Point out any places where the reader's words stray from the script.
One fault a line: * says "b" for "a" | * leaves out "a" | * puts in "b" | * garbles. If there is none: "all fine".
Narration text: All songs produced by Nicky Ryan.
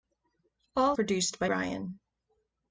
* leaves out "songs"
* leaves out "Nicky"